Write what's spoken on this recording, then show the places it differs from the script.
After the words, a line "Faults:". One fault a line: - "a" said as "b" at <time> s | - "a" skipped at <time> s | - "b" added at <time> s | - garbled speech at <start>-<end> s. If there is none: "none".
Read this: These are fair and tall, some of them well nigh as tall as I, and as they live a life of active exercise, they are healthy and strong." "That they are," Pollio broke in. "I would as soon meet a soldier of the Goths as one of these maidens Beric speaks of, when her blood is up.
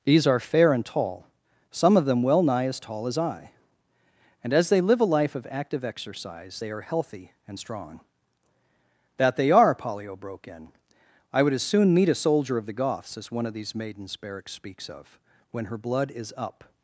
These are fair and tall, some of them well nigh as tall as I, and as they live a life of active exercise, they are healthy and strong." "That they are," Pollio broke in. "I would as soon meet a soldier of the Goths as one of these maidens Beric speaks of, when her blood is up.
Faults:
none